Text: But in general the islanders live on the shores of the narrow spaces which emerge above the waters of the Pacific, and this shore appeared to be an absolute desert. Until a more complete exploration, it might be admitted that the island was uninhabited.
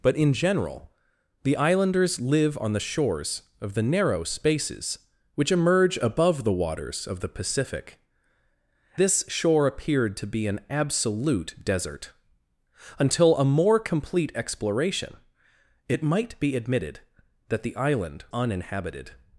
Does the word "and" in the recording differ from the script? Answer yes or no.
yes